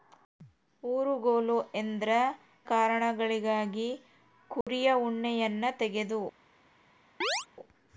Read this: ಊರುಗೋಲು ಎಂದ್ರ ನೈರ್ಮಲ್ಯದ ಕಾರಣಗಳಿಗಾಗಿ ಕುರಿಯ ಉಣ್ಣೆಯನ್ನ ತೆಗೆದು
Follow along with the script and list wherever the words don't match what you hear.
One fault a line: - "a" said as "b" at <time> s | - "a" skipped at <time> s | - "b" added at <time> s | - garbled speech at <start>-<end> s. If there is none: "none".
- "ನೈರ್ಮಲ್ಯದ" skipped at 2.1 s